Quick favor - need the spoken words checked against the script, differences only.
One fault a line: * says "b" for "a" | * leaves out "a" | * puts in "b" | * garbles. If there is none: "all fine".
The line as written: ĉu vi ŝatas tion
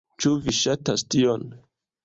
all fine